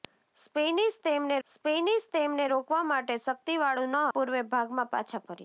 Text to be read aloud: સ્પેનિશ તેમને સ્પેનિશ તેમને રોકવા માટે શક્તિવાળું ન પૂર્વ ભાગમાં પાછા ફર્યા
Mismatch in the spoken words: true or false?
false